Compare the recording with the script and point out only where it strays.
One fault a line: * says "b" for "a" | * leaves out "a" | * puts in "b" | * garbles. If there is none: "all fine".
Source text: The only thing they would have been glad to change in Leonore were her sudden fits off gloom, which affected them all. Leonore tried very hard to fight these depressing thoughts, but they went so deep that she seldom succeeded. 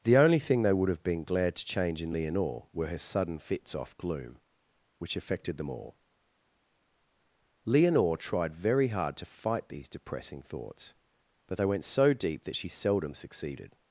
all fine